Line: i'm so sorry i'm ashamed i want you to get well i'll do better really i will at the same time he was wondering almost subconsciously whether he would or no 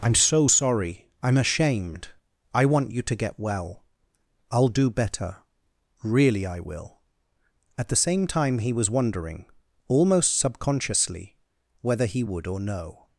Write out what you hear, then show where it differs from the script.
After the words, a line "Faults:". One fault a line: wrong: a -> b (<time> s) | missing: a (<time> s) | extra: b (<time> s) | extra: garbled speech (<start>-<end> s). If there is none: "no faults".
i'm so sorry i'm ashamed i want you to get well i'll do better really i will at the same time he was wondering almost subconsciously whether he would or no
Faults:
no faults